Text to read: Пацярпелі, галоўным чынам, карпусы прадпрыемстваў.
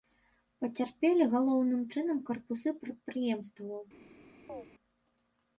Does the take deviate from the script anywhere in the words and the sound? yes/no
yes